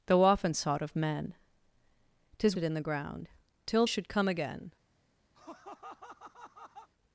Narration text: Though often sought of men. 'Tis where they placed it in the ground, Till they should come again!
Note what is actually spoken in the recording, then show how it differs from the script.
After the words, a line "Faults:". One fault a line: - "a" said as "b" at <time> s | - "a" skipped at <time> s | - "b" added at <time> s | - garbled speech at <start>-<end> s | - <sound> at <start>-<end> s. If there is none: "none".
Though often sought of men. 'Tis it in the ground, Till should come again!
Faults:
- "where they placed" skipped at 2.6 s
- "they" skipped at 3.9 s
- laugh at 5.3-6.9 s